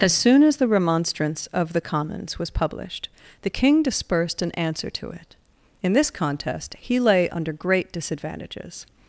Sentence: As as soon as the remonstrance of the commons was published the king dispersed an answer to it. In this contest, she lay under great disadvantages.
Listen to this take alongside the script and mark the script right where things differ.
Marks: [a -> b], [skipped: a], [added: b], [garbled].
As [skipped: as] soon as the remonstrance of the commons was published the king dispersed an answer to it. In this contest, [she -> he] lay under great disadvantages.